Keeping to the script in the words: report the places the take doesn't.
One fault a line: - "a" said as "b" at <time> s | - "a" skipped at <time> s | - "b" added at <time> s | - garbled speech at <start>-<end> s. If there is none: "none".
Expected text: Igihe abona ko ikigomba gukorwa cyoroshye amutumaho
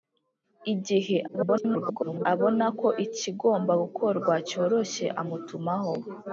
- garbled speech at 1.3-2.3 s